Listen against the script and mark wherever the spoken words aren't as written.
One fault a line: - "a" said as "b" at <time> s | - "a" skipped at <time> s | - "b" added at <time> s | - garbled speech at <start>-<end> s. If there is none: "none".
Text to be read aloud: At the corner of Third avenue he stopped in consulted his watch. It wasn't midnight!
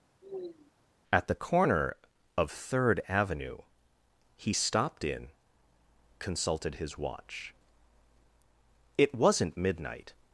none